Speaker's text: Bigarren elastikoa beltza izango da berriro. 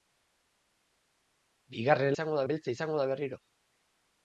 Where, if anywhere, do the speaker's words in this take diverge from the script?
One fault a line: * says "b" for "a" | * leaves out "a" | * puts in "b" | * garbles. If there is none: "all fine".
* says "izango" for "elastikoa"